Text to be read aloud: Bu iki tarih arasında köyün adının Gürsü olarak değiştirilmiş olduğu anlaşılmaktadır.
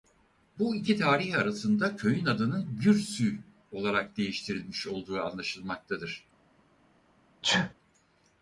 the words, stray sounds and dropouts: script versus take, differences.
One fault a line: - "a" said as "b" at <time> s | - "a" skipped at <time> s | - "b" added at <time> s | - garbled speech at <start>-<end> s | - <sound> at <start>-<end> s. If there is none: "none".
- sneeze at 7.4-7.7 s